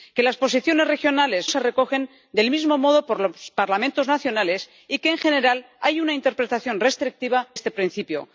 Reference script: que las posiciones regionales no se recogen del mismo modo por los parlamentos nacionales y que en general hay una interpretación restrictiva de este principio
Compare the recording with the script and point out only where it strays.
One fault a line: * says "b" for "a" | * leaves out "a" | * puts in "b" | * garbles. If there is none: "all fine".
* leaves out "no"
* leaves out "de"